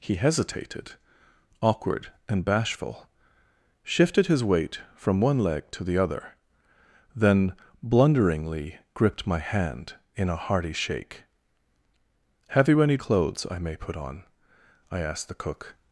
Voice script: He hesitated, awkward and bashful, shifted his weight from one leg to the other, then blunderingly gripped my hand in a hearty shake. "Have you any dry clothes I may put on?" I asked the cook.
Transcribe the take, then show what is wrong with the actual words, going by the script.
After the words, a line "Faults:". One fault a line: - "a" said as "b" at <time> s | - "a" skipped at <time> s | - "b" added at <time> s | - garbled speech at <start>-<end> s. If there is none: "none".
He hesitated, awkward and bashful, shifted his weight from one leg to the other, then blunderingly gripped my hand in a hearty shake. "Have you any clothes I may put on?" I asked the cook.
Faults:
- "dry" skipped at 13.0 s